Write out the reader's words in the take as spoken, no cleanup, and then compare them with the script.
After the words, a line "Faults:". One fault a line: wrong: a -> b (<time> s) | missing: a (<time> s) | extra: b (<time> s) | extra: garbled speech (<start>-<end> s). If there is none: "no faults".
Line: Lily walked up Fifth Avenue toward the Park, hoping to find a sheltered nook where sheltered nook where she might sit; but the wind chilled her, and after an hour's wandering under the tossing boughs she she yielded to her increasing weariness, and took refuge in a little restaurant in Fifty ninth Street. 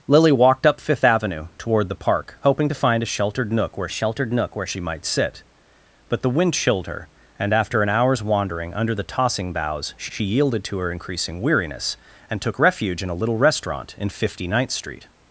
Lily walked up Fifth Avenue toward the Park, hoping to find a sheltered nook where sheltered nook where she might sit; but the wind chilled her, and after an hour's wandering under the tossing boughs she she yielded to her increasing weariness, and took refuge in a little restaurant in Fifty ninth Street.
Faults:
no faults